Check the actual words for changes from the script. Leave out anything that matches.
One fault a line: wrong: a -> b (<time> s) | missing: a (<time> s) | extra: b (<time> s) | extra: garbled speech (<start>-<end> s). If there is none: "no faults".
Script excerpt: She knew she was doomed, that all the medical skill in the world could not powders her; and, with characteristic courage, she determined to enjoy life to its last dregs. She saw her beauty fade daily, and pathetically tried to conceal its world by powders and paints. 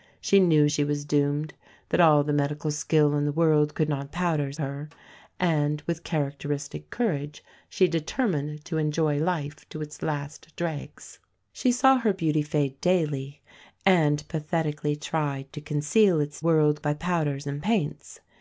no faults